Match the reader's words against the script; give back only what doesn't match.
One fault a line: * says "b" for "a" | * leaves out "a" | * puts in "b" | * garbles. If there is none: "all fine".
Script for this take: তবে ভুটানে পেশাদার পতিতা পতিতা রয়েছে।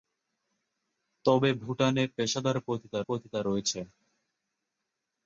all fine